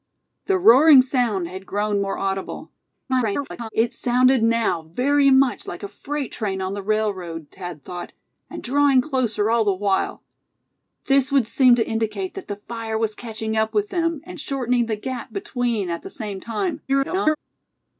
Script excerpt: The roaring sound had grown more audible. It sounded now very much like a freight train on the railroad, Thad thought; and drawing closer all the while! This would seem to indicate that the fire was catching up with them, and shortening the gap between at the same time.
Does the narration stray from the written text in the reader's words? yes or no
yes